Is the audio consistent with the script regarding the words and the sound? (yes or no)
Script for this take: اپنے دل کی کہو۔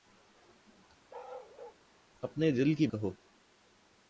no